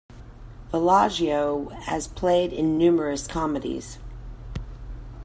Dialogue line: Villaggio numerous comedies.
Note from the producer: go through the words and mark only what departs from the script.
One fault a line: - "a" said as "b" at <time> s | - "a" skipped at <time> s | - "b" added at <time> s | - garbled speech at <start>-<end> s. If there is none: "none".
- "has played in" added at 1.8 s